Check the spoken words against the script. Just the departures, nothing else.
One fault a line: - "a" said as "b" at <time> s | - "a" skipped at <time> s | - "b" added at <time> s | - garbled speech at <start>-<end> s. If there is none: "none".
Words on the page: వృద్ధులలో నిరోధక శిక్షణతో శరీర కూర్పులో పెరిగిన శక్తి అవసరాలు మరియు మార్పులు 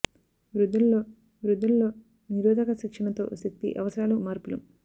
- "వృద్ధులలో" added at 1.4 s
- "శరీర కూర్పులో పెరిగిన" skipped at 3.2 s
- "మరియు" skipped at 4.2 s